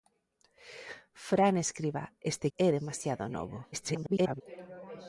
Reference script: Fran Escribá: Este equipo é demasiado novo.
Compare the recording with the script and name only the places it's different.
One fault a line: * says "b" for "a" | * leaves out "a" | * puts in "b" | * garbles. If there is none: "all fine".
* leaves out "equipo"
* garbles